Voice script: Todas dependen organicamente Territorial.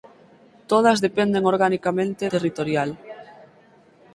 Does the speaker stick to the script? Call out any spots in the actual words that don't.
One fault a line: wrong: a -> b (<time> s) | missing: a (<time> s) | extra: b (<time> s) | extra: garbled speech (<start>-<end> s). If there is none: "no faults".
no faults